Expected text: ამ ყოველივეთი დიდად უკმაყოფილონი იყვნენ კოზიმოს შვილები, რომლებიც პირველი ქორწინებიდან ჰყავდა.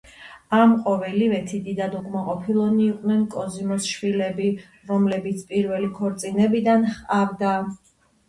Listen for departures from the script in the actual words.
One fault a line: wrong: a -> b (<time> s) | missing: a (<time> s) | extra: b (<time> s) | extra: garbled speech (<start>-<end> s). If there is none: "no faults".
no faults